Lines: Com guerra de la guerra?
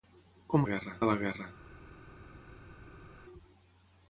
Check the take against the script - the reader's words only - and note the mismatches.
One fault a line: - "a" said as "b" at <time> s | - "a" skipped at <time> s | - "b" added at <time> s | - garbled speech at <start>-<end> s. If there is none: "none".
none